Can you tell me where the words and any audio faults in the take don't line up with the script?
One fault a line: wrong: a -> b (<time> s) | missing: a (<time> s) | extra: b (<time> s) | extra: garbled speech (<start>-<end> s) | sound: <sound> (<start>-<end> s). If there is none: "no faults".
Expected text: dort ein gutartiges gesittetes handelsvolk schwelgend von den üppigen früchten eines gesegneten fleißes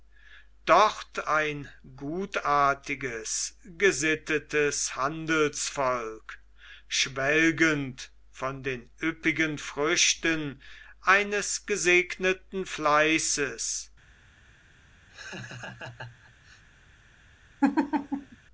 sound: laugh (15.1-16.6 s)
sound: laugh (17.6-18.4 s)